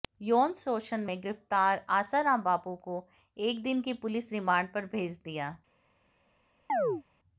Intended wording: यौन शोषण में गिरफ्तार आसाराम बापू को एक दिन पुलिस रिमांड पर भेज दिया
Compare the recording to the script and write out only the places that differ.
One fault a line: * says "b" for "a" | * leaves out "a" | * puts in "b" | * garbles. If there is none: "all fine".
* puts in "की"